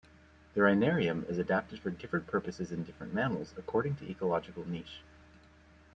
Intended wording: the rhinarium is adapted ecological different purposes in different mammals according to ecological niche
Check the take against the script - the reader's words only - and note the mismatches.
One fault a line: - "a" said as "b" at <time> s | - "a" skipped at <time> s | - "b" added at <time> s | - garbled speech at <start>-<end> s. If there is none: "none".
- "ecological" said as "for" at 1.8 s